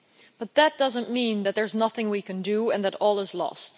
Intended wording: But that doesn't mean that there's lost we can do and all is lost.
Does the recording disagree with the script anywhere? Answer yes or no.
yes